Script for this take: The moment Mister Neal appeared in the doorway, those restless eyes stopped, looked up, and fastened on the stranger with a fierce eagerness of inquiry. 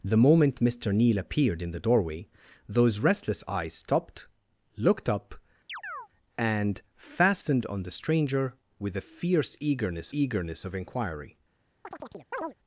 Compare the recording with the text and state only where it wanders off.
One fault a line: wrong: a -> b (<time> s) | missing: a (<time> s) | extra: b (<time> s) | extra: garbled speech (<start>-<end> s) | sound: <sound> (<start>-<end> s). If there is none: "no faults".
sound: chirp (5.7-6.1 s)
extra: eagerness (10.1 s)
sound: chirp (11.8-12.5 s)